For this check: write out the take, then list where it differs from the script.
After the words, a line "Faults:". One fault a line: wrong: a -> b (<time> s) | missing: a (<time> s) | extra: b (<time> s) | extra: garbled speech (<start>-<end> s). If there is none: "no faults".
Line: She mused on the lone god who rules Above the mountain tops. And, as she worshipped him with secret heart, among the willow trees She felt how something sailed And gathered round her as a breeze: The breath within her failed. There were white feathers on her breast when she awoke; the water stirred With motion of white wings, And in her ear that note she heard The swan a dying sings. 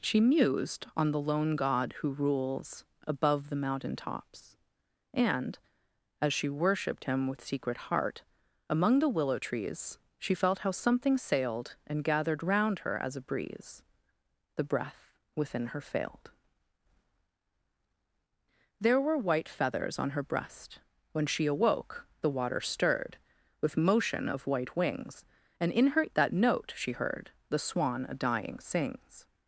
She mused on the lone god who rules Above the mountain tops. And, as she worshipped him with secret heart, among the willow trees She felt how something sailed And gathered round her as a breeze: The breath within her failed. There were white feathers on her breast when she awoke; the water stirred With motion of white wings, And in her that note she heard The swan a dying sings.
Faults:
missing: ear (26.1 s)